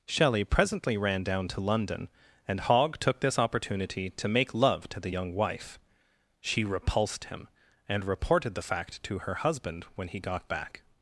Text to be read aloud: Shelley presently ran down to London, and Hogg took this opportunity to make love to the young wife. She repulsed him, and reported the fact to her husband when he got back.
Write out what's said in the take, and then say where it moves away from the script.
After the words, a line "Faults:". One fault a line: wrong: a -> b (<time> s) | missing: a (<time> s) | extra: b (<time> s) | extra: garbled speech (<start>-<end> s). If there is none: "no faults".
Shelley presently ran down to London, and Hogg took this opportunity to make love to the young wife. She repulsed him, and reported the fact to her husband when he got back.
Faults:
no faults